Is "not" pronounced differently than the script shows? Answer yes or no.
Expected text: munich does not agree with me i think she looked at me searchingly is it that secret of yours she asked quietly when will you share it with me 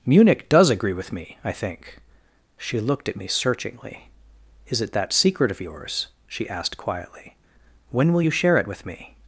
yes